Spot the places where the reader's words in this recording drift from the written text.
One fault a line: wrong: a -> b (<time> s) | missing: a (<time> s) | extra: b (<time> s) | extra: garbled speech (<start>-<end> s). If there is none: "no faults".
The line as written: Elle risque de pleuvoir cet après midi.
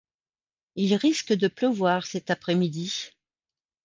wrong: Elle -> Il (0.7 s)